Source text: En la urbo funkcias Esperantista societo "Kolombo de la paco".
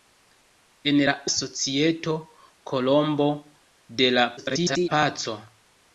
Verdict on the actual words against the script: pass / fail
fail